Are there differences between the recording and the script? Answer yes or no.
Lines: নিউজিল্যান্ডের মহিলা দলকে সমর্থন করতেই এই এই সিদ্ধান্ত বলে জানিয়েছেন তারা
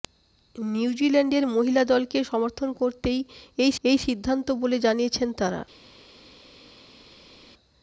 no